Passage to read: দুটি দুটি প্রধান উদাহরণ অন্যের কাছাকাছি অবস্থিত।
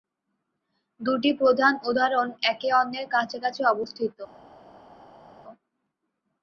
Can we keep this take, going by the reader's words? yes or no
no